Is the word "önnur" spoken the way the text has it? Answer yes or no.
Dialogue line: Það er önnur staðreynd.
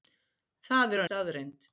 no